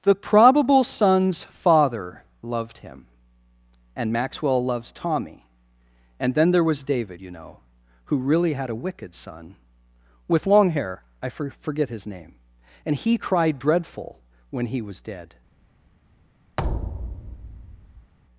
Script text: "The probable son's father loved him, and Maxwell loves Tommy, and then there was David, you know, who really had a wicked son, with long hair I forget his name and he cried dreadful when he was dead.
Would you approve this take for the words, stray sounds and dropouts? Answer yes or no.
no